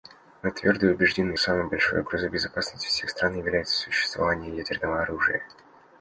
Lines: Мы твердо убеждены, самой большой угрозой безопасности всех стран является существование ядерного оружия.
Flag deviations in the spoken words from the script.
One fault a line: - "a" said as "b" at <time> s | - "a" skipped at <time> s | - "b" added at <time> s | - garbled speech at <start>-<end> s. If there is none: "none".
none